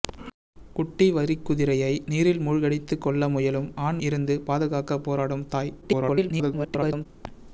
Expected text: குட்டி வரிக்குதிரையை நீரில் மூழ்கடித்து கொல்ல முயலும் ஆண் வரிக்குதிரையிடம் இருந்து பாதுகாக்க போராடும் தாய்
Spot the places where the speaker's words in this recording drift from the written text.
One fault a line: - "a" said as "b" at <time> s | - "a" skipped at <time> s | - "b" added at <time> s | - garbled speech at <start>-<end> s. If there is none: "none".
- "வரிக்குதிரையிடம்" skipped at 4.0 s
- garbled speech at 5.8-7.1 s